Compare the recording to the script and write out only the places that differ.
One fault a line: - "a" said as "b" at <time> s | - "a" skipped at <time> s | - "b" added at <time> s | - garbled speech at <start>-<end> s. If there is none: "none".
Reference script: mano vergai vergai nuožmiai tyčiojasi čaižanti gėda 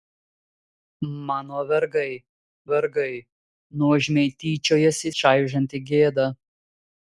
none